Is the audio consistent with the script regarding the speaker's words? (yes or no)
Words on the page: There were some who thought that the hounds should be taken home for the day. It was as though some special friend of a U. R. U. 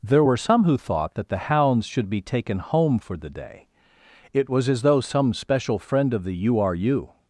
no